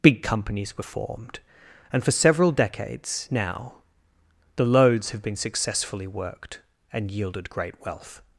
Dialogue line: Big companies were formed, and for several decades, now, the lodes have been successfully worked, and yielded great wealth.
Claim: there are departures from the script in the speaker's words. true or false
false